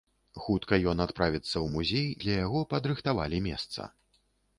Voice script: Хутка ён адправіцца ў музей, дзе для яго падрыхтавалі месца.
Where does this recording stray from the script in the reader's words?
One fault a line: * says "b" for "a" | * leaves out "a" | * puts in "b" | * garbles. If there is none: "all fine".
* leaves out "дзе"